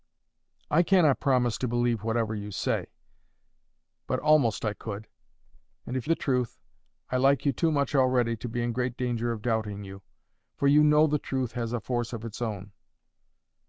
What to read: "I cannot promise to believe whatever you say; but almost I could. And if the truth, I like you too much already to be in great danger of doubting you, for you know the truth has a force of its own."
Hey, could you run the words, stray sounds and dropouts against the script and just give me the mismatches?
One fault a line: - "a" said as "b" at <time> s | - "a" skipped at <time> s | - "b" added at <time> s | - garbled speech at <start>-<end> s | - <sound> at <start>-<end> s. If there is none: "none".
none